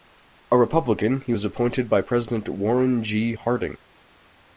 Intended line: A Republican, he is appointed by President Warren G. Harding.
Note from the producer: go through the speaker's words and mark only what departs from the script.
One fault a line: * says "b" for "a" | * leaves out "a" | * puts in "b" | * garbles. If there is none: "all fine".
* says "was" for "is"